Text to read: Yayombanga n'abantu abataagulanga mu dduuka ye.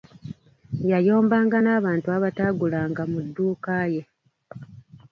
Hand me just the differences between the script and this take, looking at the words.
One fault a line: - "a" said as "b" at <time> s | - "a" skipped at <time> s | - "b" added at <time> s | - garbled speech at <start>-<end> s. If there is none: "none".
none